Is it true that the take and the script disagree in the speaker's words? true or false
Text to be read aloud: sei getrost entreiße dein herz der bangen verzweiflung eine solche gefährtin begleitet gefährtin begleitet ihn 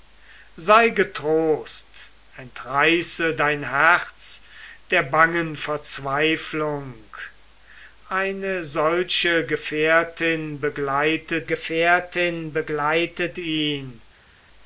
false